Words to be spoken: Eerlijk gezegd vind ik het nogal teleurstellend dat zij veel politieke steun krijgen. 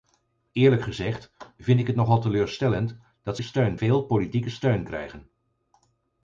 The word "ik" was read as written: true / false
true